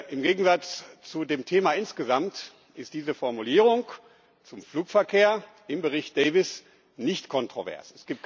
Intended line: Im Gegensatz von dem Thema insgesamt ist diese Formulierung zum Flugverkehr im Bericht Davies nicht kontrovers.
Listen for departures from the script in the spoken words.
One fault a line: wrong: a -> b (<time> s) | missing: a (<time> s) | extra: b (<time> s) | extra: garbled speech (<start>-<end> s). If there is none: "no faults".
wrong: von -> zu (1.0 s)